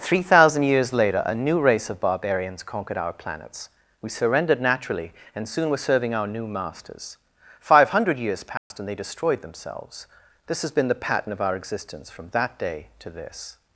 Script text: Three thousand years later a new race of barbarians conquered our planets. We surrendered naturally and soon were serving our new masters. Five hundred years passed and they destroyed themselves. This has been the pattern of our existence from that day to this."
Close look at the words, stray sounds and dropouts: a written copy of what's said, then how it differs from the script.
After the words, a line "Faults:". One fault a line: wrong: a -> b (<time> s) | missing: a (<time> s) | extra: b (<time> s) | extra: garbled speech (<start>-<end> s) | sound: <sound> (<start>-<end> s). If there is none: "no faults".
Three thousand years later a new race of barbarians conquered our planets. We surrendered naturally and soon were serving our new masters. Five hundred years passed and they destroyed themselves. This has been the pattern of our existence from that day to this."
Faults:
sound: dropout (8.6-8.7 s)